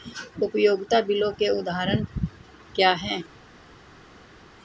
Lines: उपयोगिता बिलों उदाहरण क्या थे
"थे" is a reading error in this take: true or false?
true